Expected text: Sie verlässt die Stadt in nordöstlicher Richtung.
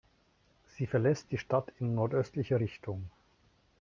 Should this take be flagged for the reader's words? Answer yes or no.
no